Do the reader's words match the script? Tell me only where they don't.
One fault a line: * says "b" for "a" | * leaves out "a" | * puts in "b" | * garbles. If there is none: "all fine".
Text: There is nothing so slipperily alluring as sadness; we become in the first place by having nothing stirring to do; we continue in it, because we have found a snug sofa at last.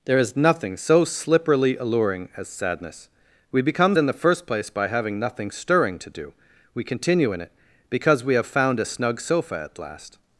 all fine